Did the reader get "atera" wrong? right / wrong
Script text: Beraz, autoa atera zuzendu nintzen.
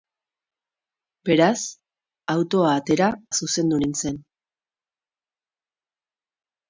right